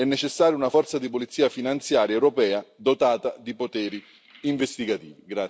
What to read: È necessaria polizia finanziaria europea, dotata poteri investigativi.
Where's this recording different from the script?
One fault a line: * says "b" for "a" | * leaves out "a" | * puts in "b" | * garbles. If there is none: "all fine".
* puts in "una forza di"
* puts in "di"